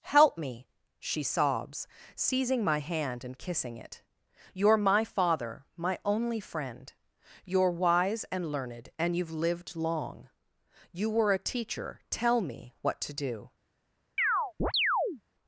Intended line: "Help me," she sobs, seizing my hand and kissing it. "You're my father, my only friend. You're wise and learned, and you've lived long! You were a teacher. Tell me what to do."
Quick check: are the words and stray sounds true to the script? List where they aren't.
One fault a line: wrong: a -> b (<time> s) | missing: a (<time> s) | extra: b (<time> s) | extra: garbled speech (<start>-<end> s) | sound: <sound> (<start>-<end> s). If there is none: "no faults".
sound: chirp (14.2-15.2 s)